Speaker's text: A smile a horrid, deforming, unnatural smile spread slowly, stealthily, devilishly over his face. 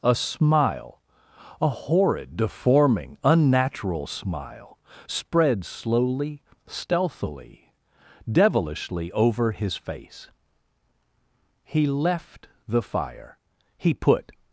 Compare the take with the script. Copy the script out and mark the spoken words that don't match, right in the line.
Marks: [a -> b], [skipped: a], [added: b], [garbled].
A smile a horrid, deforming, unnatural smile spread slowly, stealthily, devilishly over his face. [added: He left the fire he put]